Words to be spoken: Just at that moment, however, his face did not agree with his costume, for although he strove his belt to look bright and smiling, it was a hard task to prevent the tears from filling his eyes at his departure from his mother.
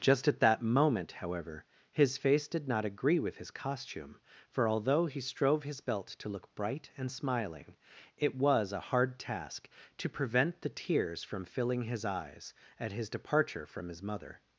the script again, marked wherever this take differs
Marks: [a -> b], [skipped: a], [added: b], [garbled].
Just at that moment, however, his face did not agree with his costume, for although he strove his belt to look bright and smiling, it was a hard task to prevent the tears from filling his eyes at his departure from his mother.